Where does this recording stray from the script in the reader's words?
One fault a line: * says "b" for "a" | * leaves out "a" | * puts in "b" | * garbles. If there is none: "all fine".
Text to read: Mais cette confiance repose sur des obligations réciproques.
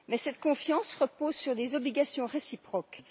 all fine